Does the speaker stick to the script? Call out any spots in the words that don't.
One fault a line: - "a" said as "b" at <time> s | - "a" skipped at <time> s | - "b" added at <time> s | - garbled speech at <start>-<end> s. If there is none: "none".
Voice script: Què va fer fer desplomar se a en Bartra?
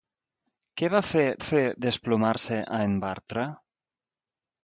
none